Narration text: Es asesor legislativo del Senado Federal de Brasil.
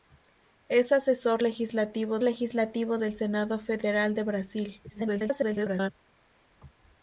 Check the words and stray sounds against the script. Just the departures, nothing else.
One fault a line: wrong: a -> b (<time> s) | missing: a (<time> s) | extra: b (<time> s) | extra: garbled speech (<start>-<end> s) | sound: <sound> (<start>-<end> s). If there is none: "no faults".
extra: legislativo (2.2 s)
extra: garbled speech (4.9-5.9 s)